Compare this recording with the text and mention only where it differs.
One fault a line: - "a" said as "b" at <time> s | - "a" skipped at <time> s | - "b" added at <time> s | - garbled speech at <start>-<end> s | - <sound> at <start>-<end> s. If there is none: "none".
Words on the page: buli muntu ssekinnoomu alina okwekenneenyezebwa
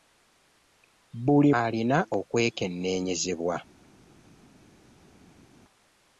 - "muntu ssekinnoomu" skipped at 1.5 s